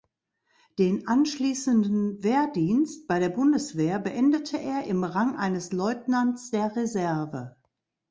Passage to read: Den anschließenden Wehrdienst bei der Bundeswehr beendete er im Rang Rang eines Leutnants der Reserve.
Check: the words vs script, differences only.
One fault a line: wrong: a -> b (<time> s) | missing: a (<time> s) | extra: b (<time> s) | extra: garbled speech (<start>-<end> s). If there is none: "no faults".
missing: Rang (5.3 s)